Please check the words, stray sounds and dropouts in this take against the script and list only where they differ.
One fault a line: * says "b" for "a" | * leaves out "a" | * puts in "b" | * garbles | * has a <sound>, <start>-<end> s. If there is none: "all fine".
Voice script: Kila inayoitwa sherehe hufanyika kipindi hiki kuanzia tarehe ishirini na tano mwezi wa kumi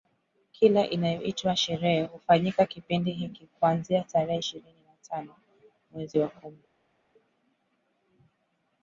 all fine